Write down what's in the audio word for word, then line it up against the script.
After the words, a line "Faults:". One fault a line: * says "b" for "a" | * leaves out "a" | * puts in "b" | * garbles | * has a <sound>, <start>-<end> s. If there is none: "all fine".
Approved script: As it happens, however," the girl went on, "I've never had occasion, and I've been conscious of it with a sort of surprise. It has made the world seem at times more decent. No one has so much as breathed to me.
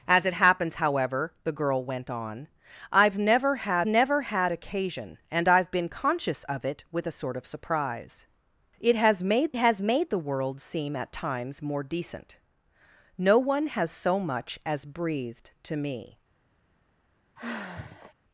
As it happens, however," the girl went on, "I've never had never had occasion, and I've been conscious of it with a sort of surprise. It has made has made the world seem at times more decent. No one has so much as breathed to me.
Faults:
* puts in "never had"
* puts in "has made"
* has a sigh, 17.4-18.1 s